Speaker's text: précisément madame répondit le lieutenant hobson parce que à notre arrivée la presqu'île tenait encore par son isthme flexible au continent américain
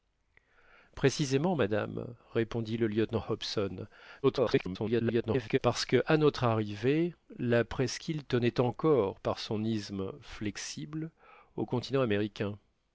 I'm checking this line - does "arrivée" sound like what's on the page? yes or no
yes